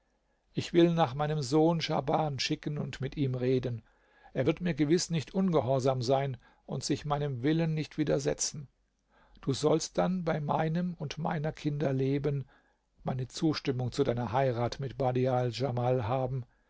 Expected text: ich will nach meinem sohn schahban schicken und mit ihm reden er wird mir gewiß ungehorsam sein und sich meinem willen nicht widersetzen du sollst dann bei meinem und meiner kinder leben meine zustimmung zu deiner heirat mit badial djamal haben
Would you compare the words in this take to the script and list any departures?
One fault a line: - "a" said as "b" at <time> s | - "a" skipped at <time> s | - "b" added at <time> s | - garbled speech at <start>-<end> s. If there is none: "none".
- "nicht" added at 5.1 s